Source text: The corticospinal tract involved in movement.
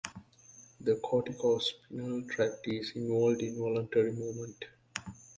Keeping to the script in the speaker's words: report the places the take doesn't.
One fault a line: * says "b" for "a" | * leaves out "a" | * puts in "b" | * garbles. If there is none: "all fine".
* puts in "is"
* puts in "voluntary"